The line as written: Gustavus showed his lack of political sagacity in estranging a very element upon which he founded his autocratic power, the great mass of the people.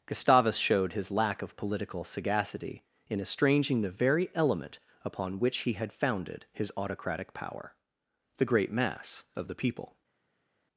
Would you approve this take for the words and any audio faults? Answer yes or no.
no